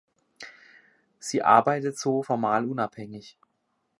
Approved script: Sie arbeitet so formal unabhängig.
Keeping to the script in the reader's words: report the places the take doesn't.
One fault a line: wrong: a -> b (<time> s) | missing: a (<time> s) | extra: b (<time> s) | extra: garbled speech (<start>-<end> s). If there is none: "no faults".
no faults